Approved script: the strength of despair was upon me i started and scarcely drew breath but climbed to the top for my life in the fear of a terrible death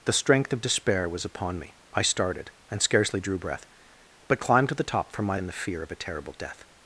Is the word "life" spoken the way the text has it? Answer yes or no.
no